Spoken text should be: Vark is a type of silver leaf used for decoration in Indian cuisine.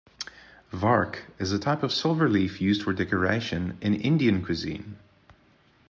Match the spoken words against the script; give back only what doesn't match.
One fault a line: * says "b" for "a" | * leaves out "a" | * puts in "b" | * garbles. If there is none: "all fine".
all fine